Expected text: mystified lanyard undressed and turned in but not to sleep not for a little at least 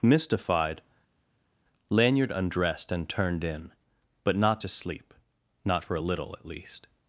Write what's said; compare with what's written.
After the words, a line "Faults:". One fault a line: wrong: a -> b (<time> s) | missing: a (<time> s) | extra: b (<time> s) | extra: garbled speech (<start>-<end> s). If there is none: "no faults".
mystified lanyard undressed and turned in but not to sleep not for a little at least
Faults:
no faults